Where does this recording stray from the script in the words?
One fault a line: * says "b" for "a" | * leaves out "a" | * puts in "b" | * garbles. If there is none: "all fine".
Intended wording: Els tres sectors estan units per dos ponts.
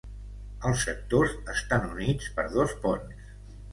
* leaves out "tres"